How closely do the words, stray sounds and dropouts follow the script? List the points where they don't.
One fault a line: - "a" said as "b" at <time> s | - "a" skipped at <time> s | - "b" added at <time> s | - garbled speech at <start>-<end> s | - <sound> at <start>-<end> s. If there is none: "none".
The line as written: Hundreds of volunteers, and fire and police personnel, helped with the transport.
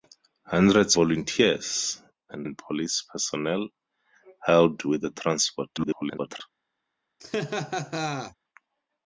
- "of" skipped at 1.0 s
- "fire" skipped at 2.5 s
- garbled speech at 5.8-6.4 s
- laugh at 7.2-8.3 s